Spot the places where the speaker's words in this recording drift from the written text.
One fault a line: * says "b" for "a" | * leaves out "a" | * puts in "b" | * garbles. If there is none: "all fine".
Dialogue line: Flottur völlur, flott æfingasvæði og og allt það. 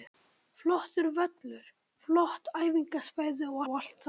all fine